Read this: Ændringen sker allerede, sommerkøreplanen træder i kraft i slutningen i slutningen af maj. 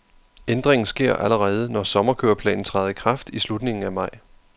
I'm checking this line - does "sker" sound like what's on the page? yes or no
yes